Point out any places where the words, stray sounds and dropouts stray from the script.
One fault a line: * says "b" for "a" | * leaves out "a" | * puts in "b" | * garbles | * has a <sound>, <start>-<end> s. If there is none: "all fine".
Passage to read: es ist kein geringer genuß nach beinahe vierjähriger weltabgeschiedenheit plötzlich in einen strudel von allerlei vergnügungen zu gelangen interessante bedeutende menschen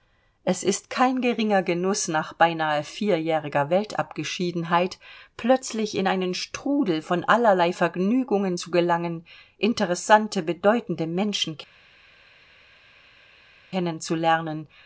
all fine